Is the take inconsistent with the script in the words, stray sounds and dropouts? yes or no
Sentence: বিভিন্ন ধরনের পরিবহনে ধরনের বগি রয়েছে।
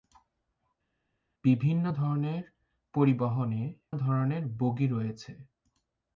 no